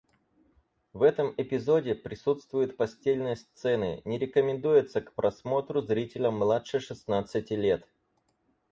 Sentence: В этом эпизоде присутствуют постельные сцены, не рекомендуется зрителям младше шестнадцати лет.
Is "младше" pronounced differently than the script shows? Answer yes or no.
no